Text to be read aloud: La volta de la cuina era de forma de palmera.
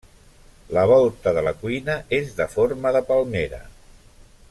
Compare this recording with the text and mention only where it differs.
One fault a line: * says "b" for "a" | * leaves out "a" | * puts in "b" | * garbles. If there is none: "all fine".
* says "és" for "era"